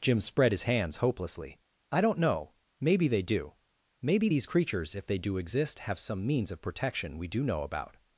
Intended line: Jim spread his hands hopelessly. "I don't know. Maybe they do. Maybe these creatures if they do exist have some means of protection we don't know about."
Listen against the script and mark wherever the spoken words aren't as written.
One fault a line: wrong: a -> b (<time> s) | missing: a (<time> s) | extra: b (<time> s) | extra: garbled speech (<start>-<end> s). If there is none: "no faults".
wrong: don't -> do (7.3 s)